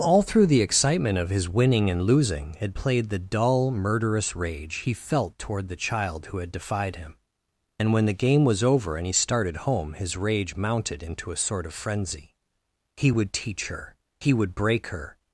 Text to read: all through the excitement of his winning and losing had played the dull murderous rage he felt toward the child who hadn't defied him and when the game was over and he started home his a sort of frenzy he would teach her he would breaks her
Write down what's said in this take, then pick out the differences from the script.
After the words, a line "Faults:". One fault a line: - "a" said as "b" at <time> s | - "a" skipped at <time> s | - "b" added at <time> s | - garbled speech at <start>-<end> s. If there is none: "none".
all through the excitement of his winning and losing had played the dull murderous rage he felt toward the child who had defied him and when the game was over and he started home his rage mounted into a sort of frenzy he would teach her he would break her
Faults:
- "hadn't" said as "had" at 6.4 s
- "rage mounted into" added at 10.2 s
- "breaks" said as "break" at 14.5 s